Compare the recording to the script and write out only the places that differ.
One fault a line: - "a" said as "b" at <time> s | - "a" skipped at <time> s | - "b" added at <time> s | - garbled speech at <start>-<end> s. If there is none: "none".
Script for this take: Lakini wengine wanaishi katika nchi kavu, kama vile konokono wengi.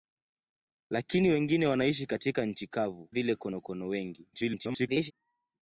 - "kama" skipped at 3.1 s
- garbled speech at 4.3-5.1 s